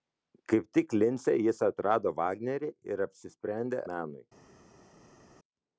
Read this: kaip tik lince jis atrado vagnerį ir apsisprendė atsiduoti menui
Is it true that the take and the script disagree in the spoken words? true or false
true